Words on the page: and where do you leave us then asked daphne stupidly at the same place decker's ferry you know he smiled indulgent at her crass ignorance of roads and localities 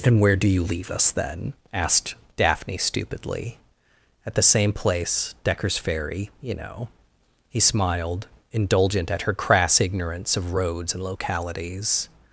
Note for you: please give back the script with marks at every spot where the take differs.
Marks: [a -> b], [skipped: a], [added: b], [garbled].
and where do you leave us then asked daphne stupidly at the same place decker's ferry you know he smiled indulgent at her crass ignorance of roads and localities